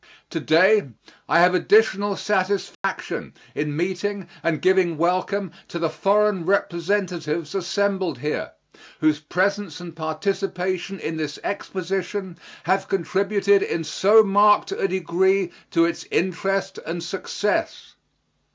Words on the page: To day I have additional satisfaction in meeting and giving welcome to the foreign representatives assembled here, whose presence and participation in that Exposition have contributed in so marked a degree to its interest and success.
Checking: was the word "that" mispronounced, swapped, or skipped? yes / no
yes